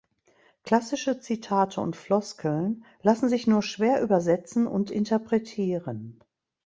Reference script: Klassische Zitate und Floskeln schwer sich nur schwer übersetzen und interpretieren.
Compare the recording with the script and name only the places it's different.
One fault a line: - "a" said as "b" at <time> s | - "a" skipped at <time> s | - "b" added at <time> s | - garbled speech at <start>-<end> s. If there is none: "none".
- "schwer" said as "lassen" at 3.0 s